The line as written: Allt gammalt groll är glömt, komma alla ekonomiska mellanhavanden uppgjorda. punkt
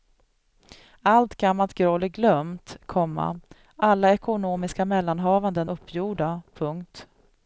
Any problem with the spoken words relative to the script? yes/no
no